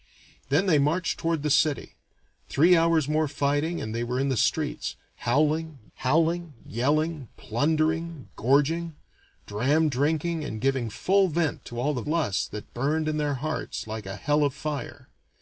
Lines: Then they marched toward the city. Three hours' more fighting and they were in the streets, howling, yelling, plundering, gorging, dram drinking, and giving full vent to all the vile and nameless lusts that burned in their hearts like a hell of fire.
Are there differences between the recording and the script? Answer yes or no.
yes